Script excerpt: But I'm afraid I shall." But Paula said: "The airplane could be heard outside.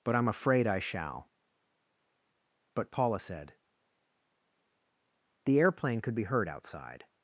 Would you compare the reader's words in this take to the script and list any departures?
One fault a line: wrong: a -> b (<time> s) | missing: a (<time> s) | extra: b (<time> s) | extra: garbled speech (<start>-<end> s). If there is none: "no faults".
no faults